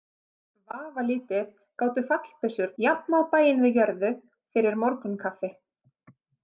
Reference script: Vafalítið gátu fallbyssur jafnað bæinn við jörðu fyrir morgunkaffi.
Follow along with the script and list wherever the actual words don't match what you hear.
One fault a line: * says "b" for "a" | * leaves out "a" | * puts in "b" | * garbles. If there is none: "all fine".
all fine